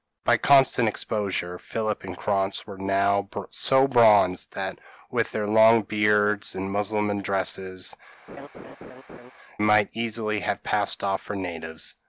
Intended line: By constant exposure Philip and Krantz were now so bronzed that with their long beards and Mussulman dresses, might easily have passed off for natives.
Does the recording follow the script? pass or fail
pass